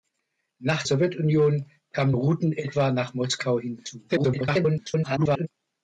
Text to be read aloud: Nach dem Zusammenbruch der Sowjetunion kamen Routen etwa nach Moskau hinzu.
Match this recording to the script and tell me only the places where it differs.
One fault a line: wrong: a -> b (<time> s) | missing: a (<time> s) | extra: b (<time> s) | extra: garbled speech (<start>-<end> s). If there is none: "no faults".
missing: dem Zusammenbruch der (0.8 s)
extra: garbled speech (4.1-5.5 s)